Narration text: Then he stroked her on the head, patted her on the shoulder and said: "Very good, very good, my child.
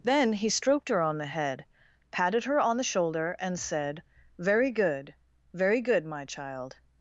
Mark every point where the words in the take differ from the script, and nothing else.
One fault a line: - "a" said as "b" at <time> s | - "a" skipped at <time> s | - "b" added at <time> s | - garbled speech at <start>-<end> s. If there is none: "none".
none